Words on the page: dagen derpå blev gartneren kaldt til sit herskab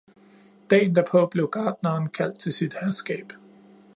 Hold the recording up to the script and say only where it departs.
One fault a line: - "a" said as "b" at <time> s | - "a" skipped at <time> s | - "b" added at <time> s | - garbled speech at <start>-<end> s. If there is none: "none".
none